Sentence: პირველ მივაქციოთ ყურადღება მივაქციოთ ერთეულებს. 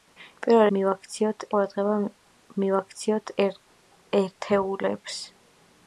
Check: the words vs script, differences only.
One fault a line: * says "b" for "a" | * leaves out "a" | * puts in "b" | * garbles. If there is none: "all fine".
all fine